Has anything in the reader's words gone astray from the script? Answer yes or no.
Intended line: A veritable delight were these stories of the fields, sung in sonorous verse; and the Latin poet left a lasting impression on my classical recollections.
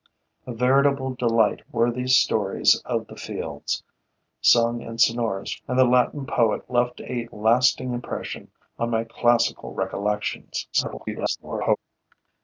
yes